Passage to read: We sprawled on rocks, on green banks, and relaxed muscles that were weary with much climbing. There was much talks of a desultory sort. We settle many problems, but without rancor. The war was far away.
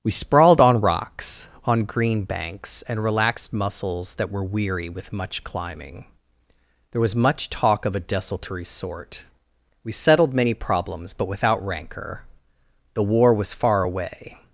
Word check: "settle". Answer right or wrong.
wrong